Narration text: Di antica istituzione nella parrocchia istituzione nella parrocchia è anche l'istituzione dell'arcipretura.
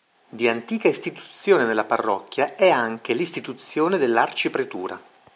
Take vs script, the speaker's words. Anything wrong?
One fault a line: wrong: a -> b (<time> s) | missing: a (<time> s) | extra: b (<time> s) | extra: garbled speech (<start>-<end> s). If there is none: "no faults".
missing: istituzione nella parrocchia (2.5 s)